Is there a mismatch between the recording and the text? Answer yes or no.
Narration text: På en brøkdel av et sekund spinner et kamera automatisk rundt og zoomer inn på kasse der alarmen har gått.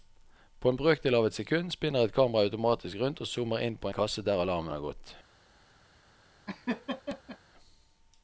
no